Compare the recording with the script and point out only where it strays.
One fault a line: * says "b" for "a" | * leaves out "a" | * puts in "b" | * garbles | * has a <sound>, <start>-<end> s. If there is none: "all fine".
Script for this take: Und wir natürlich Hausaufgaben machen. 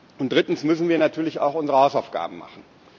* puts in "drittens müssen"
* puts in "auch unsere"